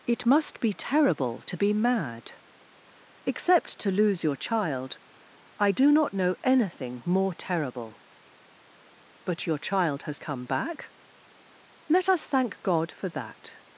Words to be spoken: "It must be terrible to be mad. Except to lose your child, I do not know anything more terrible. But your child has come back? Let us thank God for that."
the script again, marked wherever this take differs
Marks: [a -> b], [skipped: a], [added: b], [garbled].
"It must be terrible to be mad. Except to lose your child, I do not know anything more terrible. But your child has come back? Let us thank God for that."